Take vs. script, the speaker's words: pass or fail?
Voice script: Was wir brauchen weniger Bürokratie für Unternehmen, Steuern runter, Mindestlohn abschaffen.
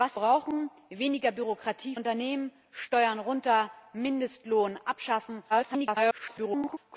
fail